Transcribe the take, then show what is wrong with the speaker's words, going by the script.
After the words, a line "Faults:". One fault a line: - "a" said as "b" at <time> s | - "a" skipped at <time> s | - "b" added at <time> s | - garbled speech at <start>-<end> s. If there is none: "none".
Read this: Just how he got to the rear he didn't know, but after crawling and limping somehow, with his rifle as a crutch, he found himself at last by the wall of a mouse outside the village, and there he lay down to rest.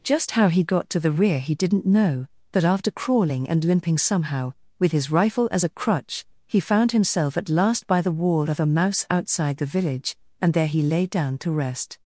Just how he got to the rear he didn't know, but after crawling and limping somehow, with his rifle as a crutch, he found himself at last by the wall of a mouse outside the village, and there he lay down to rest.
Faults:
none